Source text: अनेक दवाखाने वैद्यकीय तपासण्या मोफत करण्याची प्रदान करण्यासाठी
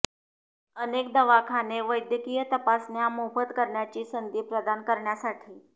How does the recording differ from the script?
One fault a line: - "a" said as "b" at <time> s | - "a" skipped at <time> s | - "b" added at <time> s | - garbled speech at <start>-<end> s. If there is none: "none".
- "संधी" added at 4.0 s